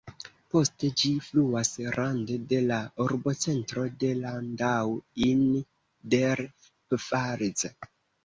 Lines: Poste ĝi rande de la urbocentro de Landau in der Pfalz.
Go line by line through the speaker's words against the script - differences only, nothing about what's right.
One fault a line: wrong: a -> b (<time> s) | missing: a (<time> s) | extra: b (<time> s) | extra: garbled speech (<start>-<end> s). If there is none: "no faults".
extra: fluas (1.3 s)